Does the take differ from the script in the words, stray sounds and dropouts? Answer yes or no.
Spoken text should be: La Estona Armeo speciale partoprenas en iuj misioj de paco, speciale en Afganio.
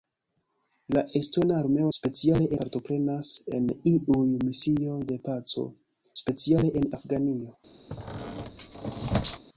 yes